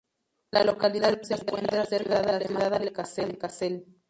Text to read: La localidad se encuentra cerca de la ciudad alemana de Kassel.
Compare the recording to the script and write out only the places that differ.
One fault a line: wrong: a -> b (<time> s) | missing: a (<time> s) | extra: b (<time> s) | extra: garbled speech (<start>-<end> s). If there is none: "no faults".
no faults